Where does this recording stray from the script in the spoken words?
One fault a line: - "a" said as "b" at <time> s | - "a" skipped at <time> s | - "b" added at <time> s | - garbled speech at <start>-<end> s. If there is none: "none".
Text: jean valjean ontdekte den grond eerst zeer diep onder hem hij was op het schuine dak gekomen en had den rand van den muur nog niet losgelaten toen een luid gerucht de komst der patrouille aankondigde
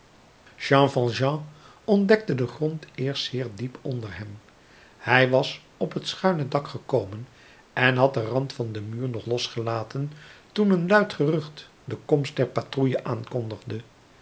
- "niet" skipped at 9.3 s